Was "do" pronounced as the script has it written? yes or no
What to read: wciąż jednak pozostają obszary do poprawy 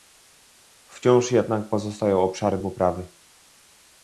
no